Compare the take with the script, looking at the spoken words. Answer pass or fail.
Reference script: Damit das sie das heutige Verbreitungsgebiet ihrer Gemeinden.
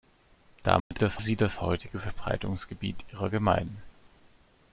pass